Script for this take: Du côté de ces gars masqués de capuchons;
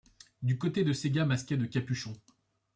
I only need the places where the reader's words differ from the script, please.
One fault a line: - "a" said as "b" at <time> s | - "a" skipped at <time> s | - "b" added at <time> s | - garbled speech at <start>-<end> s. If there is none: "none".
none